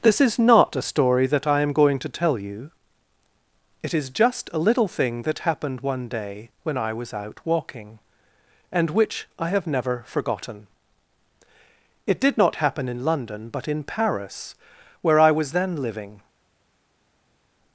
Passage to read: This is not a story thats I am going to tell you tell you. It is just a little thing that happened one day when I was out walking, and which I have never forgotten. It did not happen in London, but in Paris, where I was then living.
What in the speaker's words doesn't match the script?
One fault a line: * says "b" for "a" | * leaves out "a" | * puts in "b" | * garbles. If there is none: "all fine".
* says "that" for "thats"
* leaves out "tell you"